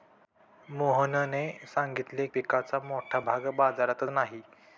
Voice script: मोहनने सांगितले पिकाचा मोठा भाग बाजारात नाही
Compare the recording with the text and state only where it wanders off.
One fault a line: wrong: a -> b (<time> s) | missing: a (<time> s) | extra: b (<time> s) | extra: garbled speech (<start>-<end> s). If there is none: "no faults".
no faults